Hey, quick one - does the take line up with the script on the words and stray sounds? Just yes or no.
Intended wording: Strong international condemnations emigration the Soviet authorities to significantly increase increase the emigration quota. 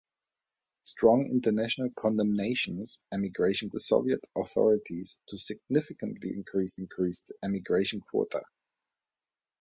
yes